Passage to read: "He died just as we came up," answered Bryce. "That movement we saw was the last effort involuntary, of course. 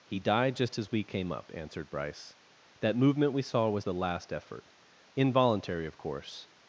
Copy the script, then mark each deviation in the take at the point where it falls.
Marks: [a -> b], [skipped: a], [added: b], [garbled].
"He died just as we came up," answered Bryce. "That movement we saw was the last effort involuntary, of course.